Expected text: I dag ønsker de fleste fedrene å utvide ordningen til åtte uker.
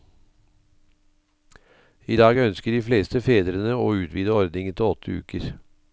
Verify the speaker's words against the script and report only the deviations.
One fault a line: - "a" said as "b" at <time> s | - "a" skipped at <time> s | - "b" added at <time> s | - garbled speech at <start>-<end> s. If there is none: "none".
none